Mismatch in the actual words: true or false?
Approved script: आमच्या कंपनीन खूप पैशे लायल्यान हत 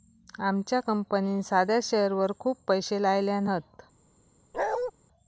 true